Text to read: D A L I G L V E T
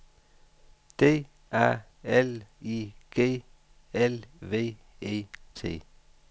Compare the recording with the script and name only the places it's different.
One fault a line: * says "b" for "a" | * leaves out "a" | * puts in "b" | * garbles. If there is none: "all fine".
all fine